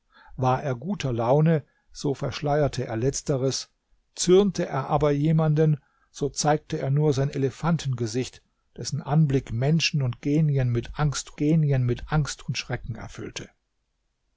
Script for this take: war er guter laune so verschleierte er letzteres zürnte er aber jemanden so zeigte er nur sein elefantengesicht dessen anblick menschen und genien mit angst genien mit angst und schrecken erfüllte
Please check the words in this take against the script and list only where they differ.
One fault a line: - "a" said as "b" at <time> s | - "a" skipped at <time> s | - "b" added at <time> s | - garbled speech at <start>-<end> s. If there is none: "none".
none